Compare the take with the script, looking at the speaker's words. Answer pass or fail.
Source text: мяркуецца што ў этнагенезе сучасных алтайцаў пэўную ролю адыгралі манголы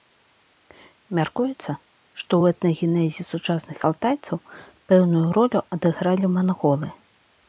pass